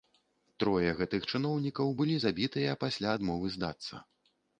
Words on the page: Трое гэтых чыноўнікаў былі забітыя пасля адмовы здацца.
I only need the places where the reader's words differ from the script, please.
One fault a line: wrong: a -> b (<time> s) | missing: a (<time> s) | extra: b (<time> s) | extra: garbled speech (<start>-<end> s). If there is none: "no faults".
no faults